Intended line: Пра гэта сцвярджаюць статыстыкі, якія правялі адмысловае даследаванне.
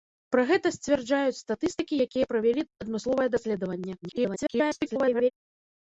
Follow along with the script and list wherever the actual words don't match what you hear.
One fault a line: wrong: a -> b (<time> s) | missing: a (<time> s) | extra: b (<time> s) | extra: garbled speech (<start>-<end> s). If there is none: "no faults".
extra: garbled speech (4.0-5.3 s)